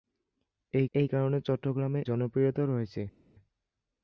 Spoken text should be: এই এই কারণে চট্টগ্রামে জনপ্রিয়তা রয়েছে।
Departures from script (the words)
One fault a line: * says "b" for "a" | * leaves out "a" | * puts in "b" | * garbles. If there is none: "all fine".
all fine